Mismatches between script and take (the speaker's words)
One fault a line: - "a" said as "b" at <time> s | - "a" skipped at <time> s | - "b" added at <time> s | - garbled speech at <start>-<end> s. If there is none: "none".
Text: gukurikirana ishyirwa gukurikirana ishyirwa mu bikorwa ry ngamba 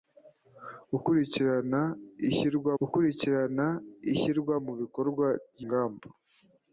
none